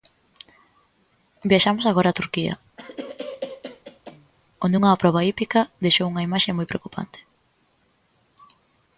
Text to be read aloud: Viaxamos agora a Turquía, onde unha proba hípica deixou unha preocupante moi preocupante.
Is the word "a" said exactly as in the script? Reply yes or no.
yes